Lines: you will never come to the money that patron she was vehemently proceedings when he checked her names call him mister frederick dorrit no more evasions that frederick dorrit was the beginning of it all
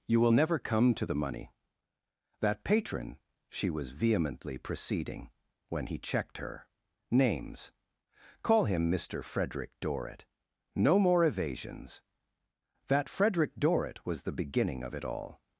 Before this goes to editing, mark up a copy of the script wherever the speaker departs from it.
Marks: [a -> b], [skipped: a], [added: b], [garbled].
you will never come to the money that patron she was vehemently [proceedings -> proceeding] when he checked her names call him mister frederick dorrit no more evasions that frederick dorrit was the beginning of it all